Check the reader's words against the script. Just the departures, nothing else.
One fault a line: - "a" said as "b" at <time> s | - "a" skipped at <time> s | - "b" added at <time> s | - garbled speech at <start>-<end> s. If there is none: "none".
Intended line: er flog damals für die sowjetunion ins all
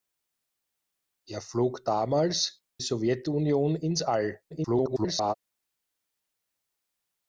- "für die" skipped at 2.6 s
- garbled speech at 4.5-5.3 s